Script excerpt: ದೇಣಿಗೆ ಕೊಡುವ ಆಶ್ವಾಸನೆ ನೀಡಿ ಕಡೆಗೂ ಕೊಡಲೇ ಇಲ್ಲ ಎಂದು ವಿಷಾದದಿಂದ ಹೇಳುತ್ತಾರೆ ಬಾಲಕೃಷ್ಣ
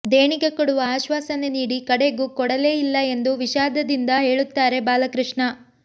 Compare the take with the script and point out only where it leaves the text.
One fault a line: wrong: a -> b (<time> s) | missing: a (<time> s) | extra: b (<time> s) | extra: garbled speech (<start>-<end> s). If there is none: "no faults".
no faults